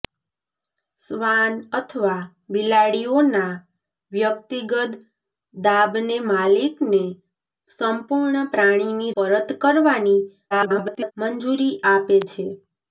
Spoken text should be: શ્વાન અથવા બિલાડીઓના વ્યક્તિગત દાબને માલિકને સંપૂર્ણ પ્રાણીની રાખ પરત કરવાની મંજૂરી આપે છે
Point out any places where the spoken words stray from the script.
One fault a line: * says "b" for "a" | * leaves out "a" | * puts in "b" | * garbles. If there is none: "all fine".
* leaves out "રાખ"
* garbles